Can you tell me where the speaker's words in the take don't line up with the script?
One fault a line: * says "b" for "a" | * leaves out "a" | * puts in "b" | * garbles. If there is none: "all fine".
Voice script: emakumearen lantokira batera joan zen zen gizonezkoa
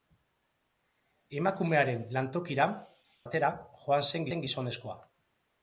all fine